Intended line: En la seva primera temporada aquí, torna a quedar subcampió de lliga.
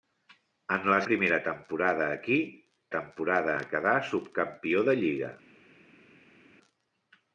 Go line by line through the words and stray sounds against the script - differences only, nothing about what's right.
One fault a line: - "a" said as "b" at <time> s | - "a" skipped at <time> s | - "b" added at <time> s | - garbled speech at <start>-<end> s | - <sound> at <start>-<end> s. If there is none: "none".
- "seva" skipped at 1.0 s
- "torna" said as "temporada" at 3.0 s